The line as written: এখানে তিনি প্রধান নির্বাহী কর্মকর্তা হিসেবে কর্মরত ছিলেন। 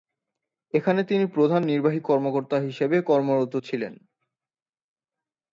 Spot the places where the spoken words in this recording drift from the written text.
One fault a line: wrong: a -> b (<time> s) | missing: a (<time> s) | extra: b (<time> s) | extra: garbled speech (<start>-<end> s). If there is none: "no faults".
no faults